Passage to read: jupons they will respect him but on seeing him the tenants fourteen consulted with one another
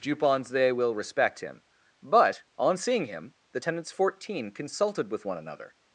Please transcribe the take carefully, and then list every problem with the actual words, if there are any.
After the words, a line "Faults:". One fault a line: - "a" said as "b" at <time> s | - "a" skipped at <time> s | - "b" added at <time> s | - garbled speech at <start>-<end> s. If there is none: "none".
jupons they will respect him but on seeing him the tenants fourteen consulted with one another
Faults:
none